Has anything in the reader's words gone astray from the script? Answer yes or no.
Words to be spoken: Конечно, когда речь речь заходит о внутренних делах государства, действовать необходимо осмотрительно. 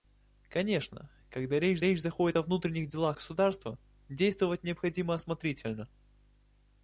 no